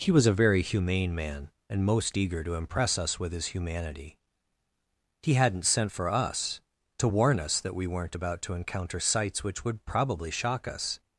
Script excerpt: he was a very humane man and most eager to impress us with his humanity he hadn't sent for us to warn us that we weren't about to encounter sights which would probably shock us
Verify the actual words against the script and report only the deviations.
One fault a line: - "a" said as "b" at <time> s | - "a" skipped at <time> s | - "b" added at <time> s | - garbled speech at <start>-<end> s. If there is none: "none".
none